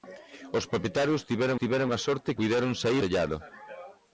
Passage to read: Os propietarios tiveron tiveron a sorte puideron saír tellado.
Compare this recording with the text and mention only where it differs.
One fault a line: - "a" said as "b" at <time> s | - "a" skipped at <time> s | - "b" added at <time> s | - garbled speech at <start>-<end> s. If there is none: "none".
none